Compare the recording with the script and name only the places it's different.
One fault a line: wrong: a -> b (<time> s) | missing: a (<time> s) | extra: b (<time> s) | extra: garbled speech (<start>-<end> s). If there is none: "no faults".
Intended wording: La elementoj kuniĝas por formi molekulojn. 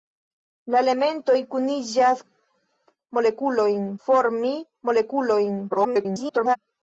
wrong: por -> molekulojn (3.2 s)
extra: garbled speech (5.7-6.6 s)